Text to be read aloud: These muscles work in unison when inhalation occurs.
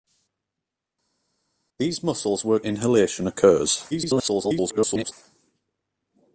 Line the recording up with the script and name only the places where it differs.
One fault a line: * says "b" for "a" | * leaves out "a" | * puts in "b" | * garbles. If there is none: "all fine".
* leaves out "in unison when"
* garbles